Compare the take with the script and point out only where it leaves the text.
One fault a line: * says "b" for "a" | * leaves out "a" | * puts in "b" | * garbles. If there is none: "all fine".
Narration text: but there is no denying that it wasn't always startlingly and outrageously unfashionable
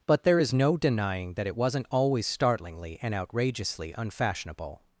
all fine